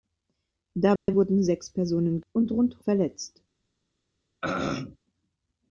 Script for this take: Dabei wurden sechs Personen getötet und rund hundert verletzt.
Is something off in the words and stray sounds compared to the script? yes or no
yes